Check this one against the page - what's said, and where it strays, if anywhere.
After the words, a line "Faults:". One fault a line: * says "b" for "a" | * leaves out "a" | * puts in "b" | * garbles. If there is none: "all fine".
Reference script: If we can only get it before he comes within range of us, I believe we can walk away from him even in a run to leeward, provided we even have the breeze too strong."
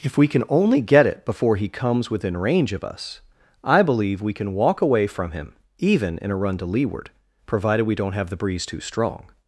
If we can only get it before he comes within range of us, I believe we can walk away from him even in a run to leeward, provided we don't have the breeze too strong."
Faults:
* says "don't" for "even"